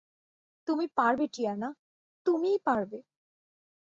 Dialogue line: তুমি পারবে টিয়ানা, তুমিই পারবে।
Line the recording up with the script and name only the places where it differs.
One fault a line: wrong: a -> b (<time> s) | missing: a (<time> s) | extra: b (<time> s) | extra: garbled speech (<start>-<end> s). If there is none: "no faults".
no faults